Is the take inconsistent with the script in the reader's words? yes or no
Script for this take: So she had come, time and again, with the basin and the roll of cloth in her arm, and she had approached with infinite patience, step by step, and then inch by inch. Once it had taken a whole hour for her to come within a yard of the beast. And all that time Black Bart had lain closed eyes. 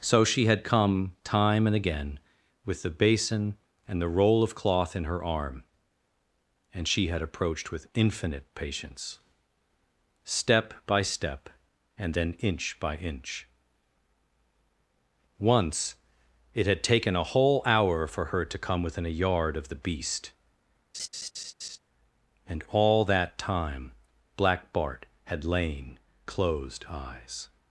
no